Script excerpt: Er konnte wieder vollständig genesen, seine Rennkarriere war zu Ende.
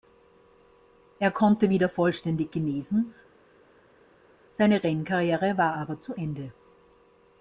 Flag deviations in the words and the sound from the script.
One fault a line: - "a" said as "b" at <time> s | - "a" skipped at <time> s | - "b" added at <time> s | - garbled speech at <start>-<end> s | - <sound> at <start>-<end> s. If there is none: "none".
- "aber" added at 5.7 s